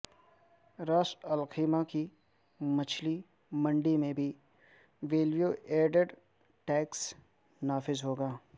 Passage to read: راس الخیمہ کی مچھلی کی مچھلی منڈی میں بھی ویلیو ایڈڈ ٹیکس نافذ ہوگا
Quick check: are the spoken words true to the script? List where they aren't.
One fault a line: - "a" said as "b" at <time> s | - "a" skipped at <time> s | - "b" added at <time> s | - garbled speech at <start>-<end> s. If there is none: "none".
- "کی مچھلی" skipped at 3.2 s